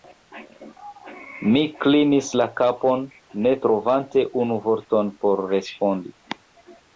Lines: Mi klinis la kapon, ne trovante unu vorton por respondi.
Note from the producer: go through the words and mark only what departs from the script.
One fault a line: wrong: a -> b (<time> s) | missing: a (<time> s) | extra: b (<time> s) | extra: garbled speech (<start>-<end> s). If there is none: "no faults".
no faults